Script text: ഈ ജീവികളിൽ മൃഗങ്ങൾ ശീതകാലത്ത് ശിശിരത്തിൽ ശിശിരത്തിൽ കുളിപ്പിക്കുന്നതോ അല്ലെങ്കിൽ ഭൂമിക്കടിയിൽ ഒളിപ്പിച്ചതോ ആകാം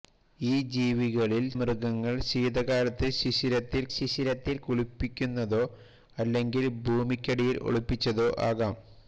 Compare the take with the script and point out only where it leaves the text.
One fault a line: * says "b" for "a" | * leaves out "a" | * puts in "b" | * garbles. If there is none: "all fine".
all fine